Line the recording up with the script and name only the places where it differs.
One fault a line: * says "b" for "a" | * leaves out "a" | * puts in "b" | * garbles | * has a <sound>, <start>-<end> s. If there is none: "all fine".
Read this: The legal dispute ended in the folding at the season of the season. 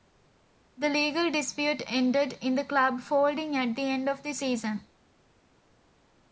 * puts in "club"
* says "end" for "season"